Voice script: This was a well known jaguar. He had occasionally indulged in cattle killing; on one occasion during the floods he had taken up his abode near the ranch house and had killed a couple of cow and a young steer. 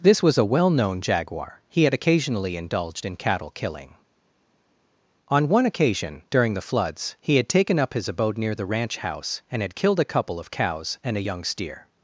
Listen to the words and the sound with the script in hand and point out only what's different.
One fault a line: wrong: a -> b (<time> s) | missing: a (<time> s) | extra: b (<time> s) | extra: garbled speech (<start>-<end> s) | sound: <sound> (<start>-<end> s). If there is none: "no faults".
wrong: cow -> cows (10.5 s)